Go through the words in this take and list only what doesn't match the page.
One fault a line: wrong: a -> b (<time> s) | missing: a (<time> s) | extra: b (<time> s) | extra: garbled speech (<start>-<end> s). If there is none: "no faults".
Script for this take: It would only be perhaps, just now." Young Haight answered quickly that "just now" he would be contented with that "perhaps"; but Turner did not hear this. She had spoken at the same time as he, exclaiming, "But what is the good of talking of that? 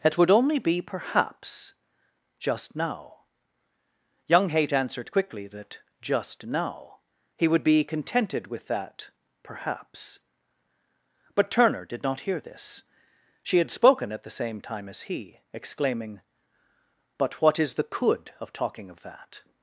wrong: good -> could (17.8 s)